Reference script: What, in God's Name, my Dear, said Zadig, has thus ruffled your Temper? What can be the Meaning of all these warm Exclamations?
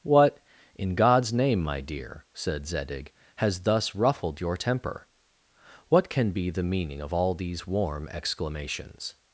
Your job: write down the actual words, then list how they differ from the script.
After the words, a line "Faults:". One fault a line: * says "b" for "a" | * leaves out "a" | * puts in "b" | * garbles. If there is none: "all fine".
What, in God's Name, my Dear, said Zadig, has thus ruffled your Temper? What can be the Meaning of all these warm Exclamations?
Faults:
all fine